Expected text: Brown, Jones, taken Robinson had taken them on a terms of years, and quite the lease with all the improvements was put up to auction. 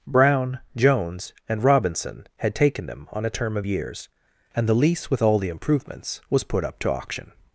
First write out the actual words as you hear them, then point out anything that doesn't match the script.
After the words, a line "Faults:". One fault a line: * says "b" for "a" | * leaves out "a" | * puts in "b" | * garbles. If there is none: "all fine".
Brown, Jones, and Robinson had taken them on a term of years, and the lease with all the improvements was put up to auction.
Faults:
* says "and" for "taken"
* says "term" for "terms"
* leaves out "quite"